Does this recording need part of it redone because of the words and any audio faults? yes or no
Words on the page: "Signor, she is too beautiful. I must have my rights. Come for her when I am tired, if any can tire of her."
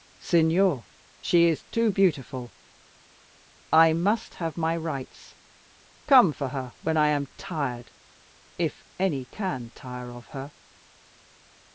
no